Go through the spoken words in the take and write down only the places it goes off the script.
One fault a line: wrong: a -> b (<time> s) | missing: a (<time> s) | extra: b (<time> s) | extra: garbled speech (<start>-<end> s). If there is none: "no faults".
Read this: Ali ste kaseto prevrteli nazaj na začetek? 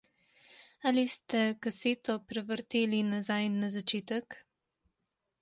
no faults